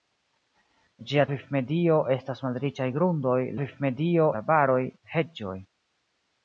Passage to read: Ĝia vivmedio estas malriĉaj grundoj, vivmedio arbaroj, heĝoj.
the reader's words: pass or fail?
pass